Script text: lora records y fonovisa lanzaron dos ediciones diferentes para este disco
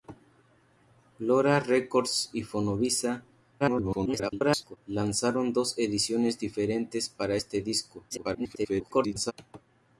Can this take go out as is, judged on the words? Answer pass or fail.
fail